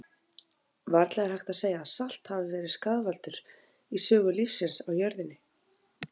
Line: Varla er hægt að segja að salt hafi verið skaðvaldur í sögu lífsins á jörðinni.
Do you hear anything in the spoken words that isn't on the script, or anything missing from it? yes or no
no